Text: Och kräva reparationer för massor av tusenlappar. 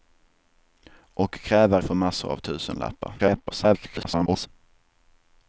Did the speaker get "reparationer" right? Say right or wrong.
wrong